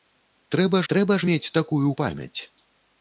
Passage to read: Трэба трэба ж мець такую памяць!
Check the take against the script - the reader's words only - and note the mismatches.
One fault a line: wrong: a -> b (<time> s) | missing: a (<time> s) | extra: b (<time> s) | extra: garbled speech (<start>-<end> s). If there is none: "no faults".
no faults